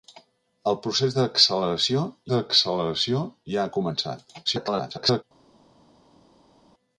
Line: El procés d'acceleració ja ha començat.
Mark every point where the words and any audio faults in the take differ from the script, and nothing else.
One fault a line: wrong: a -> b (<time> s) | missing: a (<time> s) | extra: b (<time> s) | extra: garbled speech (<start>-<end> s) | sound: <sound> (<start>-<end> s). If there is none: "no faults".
extra: d'acceleració (2.3 s)
extra: garbled speech (4.5-5.2 s)